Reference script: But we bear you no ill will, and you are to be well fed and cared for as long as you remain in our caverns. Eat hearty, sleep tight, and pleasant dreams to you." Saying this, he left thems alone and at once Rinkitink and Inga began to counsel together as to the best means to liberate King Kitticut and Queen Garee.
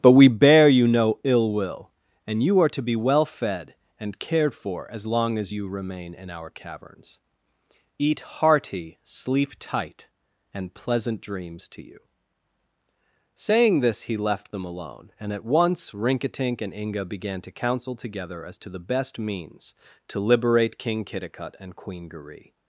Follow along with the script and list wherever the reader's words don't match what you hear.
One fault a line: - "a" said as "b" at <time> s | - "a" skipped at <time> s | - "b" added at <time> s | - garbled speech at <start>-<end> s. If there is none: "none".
- "thems" said as "them" at 14.5 s